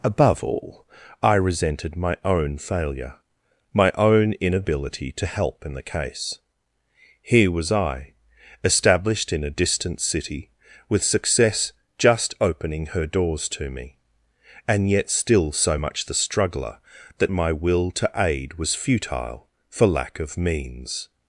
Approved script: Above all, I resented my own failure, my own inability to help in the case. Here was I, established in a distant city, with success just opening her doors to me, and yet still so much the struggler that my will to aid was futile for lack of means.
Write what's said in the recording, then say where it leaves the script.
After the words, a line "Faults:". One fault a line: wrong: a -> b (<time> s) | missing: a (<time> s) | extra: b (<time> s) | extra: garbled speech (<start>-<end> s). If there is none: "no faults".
Above all, I resented my own failure, my own inability to help in the case. Here was I, established in a distant city, with success just opening her doors to me, and yet still so much the struggler that my will to aid was futile for lack of means.
Faults:
no faults